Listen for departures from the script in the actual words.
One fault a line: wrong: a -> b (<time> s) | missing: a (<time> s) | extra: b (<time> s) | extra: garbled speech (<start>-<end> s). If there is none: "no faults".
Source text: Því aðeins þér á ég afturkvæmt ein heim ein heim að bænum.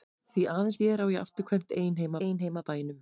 no faults